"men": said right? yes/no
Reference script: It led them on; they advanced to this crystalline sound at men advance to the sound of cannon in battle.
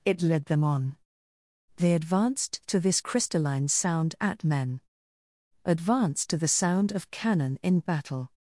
yes